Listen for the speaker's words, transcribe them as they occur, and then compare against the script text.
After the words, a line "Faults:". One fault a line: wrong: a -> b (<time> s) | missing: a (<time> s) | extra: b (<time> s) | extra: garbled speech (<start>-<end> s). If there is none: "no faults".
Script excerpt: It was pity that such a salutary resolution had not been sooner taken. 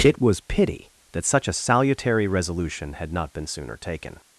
It was pity that such a salutary resolution had not been sooner taken.
Faults:
no faults